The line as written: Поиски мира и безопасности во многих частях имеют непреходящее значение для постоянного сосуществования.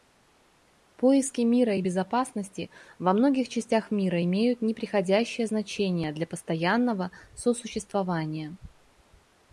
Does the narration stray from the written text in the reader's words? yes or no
yes